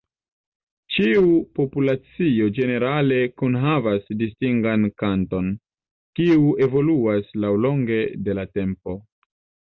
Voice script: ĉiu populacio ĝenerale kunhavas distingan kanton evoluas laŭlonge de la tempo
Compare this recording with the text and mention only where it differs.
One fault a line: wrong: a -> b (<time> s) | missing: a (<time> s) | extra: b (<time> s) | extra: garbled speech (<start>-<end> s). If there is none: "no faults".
extra: kiu (6.2 s)